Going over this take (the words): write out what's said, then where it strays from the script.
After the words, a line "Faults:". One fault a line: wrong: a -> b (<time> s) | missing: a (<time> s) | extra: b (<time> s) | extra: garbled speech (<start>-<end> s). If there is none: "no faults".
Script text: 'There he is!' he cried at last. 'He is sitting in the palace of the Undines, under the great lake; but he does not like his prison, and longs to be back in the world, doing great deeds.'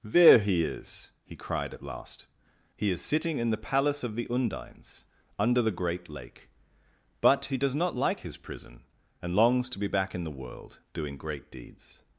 'There he is!' he cried at last. 'He is sitting in the palace of the Undines, under the great lake; but he does not like his prison, and longs to be back in the world, doing great deeds.'
Faults:
no faults